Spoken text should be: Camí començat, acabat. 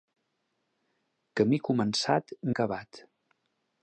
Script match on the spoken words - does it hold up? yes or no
yes